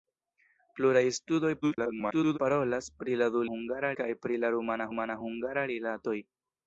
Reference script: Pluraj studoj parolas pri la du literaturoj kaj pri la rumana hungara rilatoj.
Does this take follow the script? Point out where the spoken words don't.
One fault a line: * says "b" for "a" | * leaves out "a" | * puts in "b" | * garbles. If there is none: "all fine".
* garbles
* says "hungara" for "literaturoj"
* puts in "rumana"